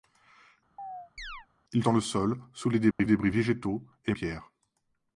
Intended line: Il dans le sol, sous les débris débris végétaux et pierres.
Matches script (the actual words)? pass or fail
pass